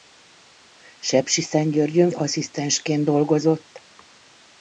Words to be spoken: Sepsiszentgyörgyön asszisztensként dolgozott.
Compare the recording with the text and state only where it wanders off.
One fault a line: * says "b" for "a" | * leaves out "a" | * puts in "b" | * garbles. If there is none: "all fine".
all fine